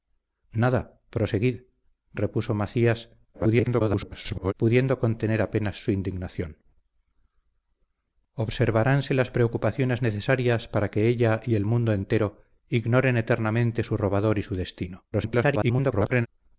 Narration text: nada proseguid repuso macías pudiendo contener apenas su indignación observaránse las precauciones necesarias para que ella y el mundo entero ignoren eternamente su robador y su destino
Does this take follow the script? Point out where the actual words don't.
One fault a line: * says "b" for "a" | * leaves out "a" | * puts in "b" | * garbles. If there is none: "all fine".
* garbles
* garbles